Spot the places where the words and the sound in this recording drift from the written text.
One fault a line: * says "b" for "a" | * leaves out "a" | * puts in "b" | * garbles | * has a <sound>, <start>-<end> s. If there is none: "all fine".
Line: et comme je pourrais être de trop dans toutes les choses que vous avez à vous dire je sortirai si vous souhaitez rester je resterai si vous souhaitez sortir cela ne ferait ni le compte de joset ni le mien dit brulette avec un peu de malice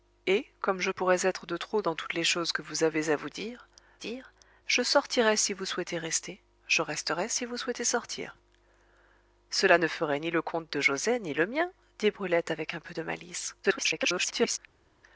* puts in "dire"
* garbles